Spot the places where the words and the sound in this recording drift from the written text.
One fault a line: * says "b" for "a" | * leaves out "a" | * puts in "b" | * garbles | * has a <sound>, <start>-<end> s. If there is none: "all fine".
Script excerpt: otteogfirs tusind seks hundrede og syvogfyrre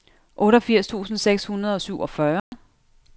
* has a dropout, 2.4-2.5 s